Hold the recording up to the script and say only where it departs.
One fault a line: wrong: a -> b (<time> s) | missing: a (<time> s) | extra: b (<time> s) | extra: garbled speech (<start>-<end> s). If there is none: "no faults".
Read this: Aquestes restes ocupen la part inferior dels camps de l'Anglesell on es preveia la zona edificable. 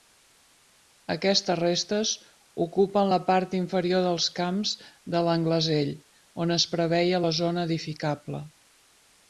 no faults